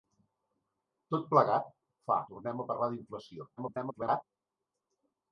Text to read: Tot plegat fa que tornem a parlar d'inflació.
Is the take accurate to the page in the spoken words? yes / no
no